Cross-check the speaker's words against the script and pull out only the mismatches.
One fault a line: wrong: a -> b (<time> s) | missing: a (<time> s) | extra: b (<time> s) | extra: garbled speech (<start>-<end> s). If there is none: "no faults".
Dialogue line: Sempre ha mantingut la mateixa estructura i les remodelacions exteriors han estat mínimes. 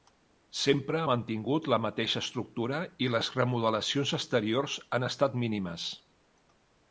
no faults